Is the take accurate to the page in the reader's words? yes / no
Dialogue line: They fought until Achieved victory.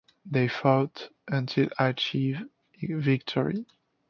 yes